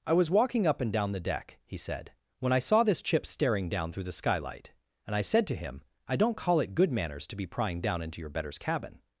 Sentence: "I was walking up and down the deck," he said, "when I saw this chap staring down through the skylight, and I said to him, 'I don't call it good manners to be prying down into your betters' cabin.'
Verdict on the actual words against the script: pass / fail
fail